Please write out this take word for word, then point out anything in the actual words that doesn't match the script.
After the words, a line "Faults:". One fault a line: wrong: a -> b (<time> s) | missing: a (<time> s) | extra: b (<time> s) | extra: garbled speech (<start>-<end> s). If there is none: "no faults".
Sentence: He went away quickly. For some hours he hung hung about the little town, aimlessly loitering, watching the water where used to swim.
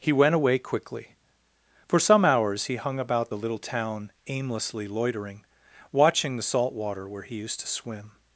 He went away quickly. For some hours he hung about the little town, aimlessly loitering, watching the salt water where he used to swim.
Faults:
missing: hung (3.0 s)
extra: salt (6.4 s)
extra: he (7.2 s)